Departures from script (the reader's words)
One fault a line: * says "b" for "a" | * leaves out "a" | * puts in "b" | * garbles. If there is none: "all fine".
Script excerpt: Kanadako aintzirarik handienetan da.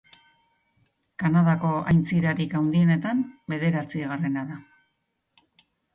* puts in "bederatzigarrena"